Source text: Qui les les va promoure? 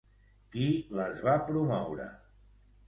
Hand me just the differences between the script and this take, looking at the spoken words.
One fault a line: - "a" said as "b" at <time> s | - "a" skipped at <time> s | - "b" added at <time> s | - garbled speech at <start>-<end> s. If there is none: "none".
- "les" skipped at 1.2 s